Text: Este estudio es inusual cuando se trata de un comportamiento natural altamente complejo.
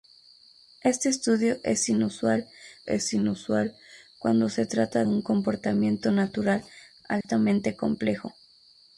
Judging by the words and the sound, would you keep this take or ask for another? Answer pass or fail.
fail